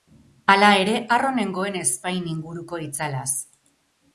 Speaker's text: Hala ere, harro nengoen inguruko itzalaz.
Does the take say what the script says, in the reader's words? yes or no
no